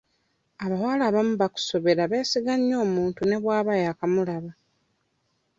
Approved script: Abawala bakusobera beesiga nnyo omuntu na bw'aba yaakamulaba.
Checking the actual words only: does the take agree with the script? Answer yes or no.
no